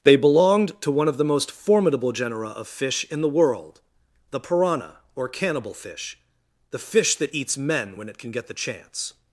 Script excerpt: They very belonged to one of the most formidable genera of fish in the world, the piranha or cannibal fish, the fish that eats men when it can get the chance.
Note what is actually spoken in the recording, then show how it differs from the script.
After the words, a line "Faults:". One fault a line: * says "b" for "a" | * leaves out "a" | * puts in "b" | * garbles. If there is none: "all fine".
They belonged to one of the most formidable genera of fish in the world, the piranha or cannibal fish, the fish that eats men when it can get the chance.
Faults:
* leaves out "very"